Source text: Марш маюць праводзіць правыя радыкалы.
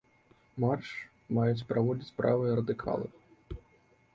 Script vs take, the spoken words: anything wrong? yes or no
no